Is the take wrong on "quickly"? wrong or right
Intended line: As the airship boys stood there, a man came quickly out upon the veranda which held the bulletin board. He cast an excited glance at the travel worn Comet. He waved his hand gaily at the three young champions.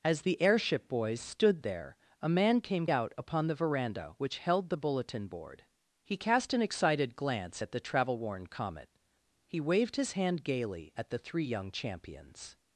wrong